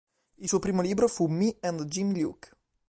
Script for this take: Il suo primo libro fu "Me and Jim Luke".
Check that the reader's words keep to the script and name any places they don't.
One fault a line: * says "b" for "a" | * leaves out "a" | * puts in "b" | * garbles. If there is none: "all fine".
all fine